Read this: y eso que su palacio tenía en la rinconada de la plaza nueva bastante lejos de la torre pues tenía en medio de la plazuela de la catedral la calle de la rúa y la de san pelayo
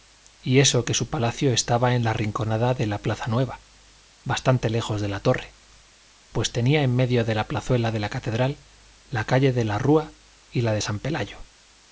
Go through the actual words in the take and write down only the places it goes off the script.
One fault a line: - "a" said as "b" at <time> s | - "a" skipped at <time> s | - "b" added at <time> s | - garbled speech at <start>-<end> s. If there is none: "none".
- "tenía" said as "estaba" at 1.5 s